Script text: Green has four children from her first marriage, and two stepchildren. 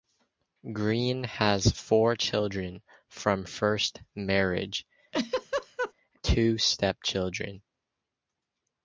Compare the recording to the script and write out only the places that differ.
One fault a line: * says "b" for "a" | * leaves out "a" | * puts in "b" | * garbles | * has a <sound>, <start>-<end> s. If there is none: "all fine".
* leaves out "her"
* leaves out "and"
* has a laugh, 5.1-5.9 s